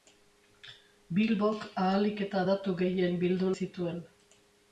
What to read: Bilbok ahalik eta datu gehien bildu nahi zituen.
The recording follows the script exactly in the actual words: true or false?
false